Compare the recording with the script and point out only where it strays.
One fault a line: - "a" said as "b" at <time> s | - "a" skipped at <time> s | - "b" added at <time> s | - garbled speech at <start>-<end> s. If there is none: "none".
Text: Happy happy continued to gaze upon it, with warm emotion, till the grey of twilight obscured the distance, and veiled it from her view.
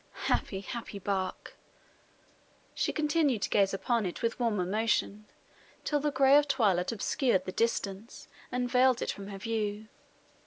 - "bark She" added at 1.0 s